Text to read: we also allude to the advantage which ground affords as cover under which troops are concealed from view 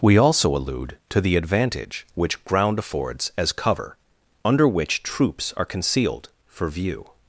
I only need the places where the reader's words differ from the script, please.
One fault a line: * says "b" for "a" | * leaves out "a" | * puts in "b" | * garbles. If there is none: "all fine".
* says "for" for "from"